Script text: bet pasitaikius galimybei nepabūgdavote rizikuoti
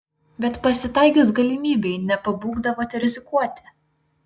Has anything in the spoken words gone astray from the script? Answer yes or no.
no